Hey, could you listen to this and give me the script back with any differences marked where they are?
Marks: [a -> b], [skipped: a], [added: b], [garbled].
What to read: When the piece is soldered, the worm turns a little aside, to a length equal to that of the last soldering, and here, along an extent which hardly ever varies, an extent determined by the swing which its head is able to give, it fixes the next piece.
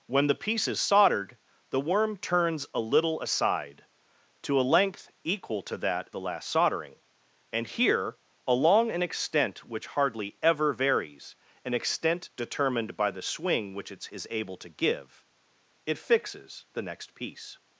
When the piece is soldered, the worm turns a little aside, to a length equal to that [skipped: of] the last soldering, and here, along an extent which hardly ever varies, an extent determined by the swing which its [skipped: head] is able to give, it fixes the next piece.